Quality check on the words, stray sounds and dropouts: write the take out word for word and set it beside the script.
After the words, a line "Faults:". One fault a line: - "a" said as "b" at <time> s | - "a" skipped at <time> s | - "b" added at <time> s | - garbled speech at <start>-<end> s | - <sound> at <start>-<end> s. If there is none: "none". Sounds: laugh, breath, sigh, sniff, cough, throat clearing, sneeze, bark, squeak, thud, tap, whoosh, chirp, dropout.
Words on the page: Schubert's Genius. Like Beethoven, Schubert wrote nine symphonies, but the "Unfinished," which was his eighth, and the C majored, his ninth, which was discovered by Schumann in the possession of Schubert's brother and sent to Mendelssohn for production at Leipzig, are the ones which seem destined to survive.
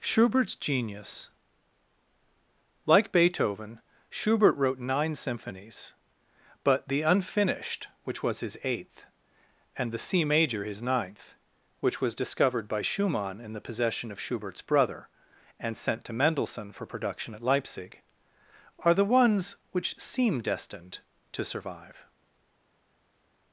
Schubert's Genius. Like Beethoven, Schubert wrote nine symphonies, but the "Unfinished," which was his eighth, and the C major, his ninth, which was discovered by Schumann in the possession of Schubert's brother and sent to Mendelssohn for production at Leipzig, are the ones which seem destined to survive.
Faults:
- "majored" said as "major" at 10.2 s